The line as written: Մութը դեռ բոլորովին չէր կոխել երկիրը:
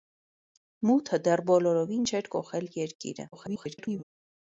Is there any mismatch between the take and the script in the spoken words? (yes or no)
yes